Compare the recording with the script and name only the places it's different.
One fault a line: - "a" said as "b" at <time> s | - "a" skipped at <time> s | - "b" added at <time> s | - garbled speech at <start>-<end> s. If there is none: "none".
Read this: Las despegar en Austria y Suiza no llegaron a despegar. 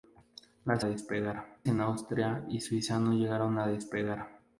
none